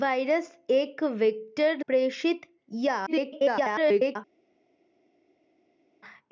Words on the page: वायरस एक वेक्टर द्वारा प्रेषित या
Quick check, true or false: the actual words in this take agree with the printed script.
false